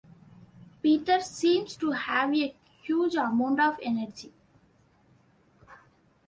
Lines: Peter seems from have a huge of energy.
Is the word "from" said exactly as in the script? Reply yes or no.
no